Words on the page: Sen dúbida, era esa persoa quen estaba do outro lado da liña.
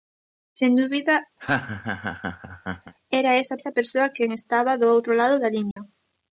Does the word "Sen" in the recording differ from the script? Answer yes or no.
no